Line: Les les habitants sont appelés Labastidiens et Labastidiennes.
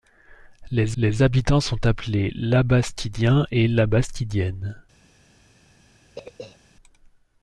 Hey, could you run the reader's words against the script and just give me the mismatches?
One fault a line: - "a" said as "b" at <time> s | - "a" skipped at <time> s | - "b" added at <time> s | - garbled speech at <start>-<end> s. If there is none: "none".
none